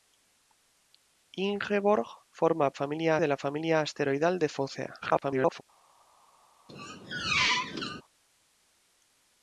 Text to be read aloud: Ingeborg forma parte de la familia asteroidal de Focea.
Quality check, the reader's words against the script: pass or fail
fail